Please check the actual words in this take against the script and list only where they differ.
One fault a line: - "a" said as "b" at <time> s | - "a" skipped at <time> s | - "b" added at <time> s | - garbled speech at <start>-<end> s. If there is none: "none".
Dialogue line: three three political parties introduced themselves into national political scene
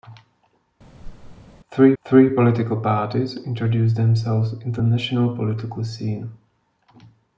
none